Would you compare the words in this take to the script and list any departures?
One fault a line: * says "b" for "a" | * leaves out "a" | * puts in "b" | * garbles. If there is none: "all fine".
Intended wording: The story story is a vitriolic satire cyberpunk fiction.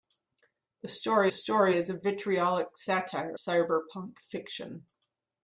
all fine